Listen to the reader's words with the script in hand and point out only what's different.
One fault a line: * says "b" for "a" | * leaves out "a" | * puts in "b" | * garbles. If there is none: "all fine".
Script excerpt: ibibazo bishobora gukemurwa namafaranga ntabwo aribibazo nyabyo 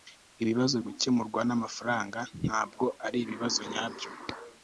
* leaves out "bishobora"